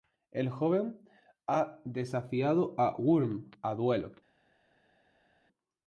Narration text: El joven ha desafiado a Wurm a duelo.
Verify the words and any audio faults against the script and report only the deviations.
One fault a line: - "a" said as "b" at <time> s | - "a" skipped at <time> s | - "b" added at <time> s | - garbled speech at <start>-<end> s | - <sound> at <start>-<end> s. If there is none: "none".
none